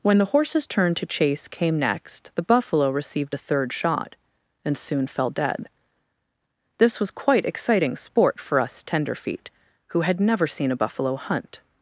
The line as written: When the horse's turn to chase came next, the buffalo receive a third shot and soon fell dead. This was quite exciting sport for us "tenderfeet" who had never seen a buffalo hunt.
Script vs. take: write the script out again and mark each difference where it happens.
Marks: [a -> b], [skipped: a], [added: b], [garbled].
When the horse's turn to chase came next, the buffalo [receive -> received] a third shot and soon fell dead. This was quite exciting sport for us "tenderfeet" who had never seen a buffalo hunt.